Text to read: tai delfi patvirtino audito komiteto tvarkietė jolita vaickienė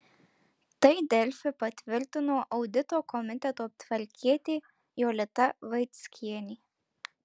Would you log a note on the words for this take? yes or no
no